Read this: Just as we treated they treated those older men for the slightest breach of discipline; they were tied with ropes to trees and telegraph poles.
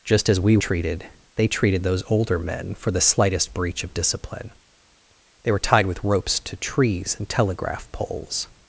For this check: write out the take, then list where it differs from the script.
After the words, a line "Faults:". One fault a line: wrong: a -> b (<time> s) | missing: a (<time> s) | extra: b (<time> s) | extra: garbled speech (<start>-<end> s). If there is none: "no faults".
Just as we treated they treated those older men for the slightest breach of discipline; they were tied with ropes to trees and telegraph poles.
Faults:
no faults